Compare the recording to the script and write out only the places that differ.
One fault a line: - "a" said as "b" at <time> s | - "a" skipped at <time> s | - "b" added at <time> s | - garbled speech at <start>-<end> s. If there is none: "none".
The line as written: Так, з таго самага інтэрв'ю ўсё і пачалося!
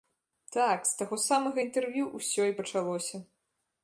none